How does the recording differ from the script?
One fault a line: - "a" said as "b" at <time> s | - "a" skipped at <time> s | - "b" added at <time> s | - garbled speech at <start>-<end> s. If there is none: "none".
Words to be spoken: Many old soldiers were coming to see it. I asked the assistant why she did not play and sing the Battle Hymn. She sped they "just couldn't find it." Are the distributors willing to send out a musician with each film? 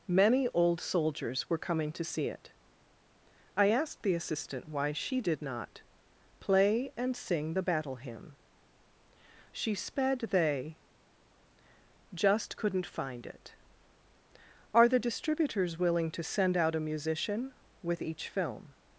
none